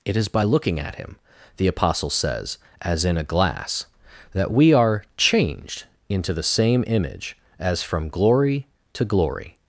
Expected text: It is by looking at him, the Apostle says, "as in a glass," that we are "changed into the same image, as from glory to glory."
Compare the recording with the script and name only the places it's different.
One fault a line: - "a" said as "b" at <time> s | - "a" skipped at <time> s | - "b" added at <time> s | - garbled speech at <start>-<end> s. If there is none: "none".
none